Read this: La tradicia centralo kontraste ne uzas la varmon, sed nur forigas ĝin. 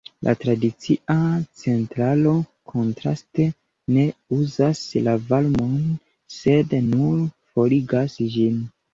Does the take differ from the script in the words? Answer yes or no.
no